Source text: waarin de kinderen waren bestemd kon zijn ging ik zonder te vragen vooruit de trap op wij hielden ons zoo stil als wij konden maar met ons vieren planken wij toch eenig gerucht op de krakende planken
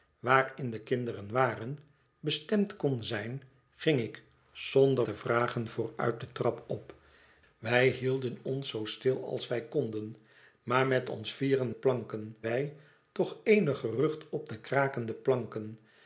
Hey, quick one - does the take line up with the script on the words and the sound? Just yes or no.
yes